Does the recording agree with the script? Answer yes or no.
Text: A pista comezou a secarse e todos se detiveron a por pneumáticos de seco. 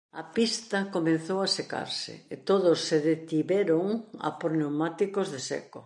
yes